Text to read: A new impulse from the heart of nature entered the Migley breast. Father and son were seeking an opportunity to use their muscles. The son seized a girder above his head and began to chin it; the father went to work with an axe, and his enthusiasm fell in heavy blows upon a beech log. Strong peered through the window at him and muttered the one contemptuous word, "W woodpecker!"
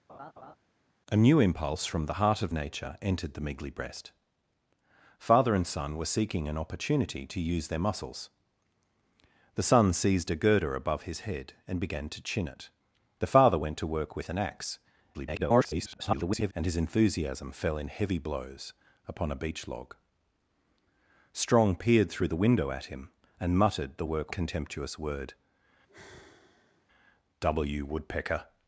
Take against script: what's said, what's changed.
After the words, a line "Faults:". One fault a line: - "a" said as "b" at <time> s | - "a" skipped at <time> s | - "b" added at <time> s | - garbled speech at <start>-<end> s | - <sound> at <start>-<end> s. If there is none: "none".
A new impulse from the heart of nature entered the Migley breast. Father and son were seeking an opportunity to use their muscles. The son seized a girder above his head and began to chin it; the father went to work with an axe, [garbled] and his enthusiasm fell in heavy blows upon a beech log. Strong peered through the window at him and muttered the work contemptuous word, "W woodpecker!"
Faults:
- laugh at 0.1-0.6 s
- garbled speech at 15.1-16.5 s
- "one" said as "work" at 24.1 s
- sigh at 25.9-26.9 s